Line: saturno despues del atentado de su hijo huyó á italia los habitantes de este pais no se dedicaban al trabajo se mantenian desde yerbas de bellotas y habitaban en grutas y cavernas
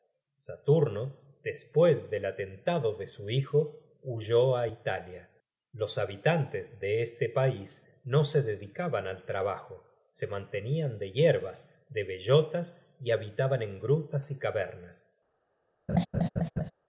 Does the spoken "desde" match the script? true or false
false